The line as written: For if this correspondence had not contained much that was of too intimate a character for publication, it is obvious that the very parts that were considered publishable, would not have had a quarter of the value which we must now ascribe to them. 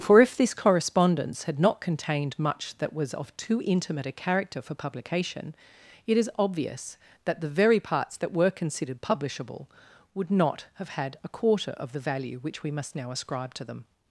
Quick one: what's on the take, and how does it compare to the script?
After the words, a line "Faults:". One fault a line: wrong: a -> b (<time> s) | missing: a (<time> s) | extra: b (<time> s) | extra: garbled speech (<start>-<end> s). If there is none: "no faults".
For if this correspondence had not contained much that was of too intimate a character for publication, it is obvious that the very parts that were considered publishable, would not have had a quarter of the value which we must now ascribe to them.
Faults:
no faults